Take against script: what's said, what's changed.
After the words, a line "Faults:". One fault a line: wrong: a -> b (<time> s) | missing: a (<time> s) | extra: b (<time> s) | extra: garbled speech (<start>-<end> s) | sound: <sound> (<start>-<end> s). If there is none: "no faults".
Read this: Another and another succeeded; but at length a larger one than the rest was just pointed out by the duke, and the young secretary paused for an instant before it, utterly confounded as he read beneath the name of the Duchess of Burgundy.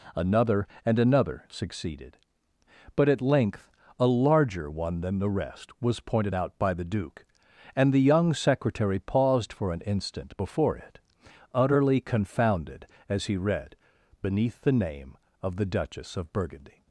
Another and another succeeded; but at length a larger one than the rest was pointed out by the duke, and the young secretary paused for an instant before it, utterly confounded as he read beneath the name of the Duchess of Burgundy.
Faults:
missing: just (6.0 s)